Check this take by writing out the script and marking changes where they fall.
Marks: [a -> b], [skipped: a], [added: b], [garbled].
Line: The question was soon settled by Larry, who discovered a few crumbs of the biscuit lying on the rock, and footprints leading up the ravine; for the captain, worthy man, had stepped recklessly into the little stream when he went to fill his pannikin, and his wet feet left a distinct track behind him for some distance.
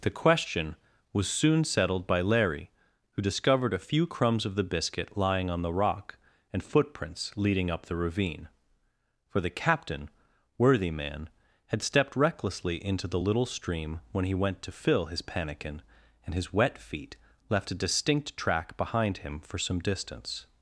The question was soon settled by Larry, who discovered a few crumbs of the biscuit lying on the rock, and footprints leading up the ravine; for the captain, worthy man, had stepped recklessly into the little stream when he went to fill his pannikin, and his wet feet left a distinct track behind him for some distance.